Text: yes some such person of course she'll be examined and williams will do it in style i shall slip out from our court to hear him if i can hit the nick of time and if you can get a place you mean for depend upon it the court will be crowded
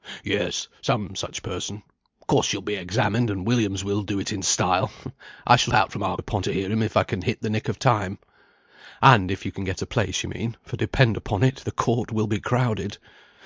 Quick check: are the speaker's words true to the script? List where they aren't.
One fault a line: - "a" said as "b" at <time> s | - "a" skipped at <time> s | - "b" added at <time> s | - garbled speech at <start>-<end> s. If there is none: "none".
- "slip" skipped at 5.7 s
- "court" said as "upon" at 6.2 s